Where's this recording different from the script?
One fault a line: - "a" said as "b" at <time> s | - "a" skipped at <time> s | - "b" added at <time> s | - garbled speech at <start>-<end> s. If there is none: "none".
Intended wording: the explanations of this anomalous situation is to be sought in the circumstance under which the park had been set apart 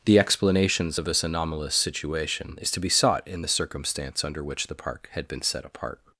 none